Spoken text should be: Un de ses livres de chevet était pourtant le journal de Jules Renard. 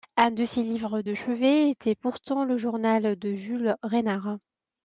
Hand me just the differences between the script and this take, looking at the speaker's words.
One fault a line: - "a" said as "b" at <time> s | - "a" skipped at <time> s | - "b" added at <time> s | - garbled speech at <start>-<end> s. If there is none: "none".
none